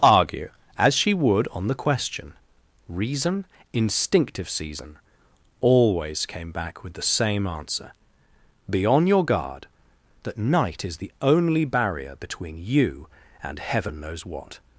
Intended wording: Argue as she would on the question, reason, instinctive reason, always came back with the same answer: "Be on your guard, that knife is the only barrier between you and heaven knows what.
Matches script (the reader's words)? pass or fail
fail